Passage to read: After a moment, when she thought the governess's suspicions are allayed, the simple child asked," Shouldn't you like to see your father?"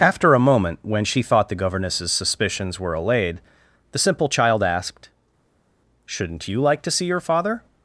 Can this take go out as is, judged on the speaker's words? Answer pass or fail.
fail